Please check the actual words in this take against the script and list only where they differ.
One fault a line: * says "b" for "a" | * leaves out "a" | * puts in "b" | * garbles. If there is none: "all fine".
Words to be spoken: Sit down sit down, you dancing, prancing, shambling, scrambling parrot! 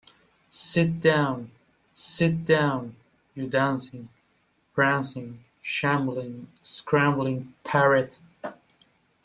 all fine